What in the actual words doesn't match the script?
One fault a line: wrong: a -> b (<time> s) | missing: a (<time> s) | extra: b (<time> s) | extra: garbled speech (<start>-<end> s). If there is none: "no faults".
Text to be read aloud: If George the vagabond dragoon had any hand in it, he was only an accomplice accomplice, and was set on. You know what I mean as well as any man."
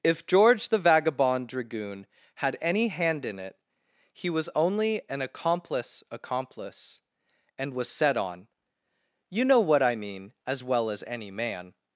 no faults